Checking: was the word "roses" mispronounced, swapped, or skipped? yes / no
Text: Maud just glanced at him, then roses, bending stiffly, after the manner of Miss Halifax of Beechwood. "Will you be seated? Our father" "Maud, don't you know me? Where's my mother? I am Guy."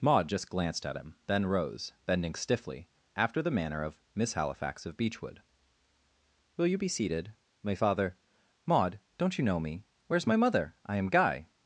yes